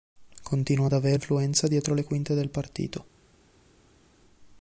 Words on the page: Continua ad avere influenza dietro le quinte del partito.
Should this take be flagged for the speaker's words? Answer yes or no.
no